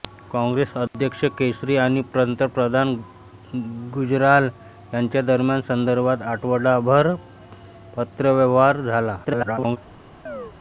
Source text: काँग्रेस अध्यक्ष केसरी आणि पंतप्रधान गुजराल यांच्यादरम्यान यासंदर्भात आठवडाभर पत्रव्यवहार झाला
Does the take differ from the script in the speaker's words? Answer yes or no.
yes